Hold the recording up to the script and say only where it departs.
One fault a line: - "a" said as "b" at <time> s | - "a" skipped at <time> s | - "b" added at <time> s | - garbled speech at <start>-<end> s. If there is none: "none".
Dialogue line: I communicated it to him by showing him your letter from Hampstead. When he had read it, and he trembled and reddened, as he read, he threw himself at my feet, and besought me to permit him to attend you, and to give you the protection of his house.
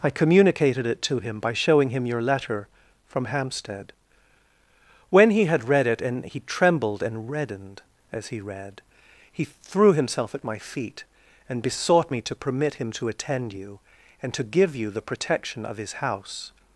none